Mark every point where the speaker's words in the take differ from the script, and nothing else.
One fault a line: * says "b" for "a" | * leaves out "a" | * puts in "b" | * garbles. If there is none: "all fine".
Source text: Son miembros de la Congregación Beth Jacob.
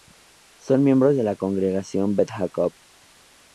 all fine